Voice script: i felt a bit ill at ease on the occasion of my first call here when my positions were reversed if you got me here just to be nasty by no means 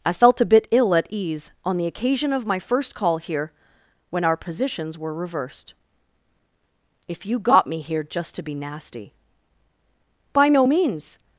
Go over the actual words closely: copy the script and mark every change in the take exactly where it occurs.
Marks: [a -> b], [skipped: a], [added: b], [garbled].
i felt a bit ill at ease on the occasion of my first call here when [my -> our] positions were reversed if you got me here just to be nasty by no means